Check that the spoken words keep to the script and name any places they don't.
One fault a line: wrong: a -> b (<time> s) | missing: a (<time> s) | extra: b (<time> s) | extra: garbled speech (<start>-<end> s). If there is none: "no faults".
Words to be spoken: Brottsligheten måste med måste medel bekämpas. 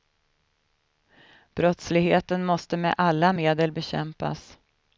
wrong: måste -> alla (3.0 s)